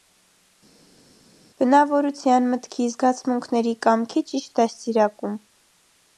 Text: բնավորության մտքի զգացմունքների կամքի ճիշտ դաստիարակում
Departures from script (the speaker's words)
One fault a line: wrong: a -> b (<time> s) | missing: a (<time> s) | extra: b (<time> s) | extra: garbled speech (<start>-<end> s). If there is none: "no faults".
no faults